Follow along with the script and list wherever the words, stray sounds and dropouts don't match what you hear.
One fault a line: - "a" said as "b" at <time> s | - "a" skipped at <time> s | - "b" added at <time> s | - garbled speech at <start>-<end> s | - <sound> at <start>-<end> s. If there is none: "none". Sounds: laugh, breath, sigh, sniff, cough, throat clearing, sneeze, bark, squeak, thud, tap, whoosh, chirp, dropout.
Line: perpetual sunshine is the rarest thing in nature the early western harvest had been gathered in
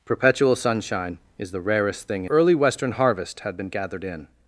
- "in nature the" skipped at 2.2 s